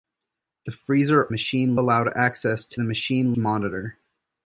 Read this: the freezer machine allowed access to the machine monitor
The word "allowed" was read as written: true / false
true